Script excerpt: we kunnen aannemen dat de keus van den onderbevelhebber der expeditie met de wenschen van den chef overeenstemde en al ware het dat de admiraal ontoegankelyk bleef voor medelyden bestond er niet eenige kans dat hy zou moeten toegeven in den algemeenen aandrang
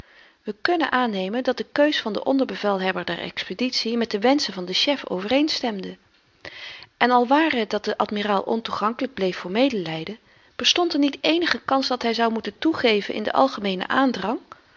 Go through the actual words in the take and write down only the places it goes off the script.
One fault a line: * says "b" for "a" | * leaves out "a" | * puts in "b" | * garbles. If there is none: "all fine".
all fine